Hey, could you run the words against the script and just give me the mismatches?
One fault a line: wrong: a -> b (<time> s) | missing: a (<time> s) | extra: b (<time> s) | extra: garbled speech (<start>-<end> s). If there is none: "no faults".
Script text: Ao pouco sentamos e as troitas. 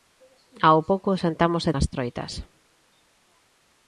no faults